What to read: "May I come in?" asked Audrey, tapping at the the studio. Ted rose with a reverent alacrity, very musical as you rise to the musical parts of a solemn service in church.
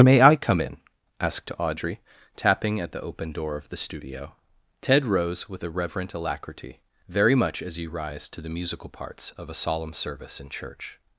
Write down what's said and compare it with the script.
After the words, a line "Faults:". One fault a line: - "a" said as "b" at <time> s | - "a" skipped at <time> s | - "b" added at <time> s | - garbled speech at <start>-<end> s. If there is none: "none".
"May I come in?" asked Audrey, tapping at the open door of the studio. Ted rose with a reverent alacrity, very much as you rise to the musical parts of a solemn service in church.
Faults:
- "open door of" added at 3.0 s
- "musical" said as "much" at 7.3 s